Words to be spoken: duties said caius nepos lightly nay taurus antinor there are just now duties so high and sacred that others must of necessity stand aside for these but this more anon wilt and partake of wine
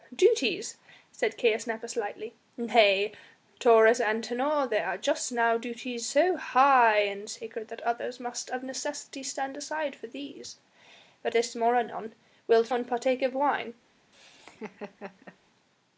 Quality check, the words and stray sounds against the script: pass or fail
fail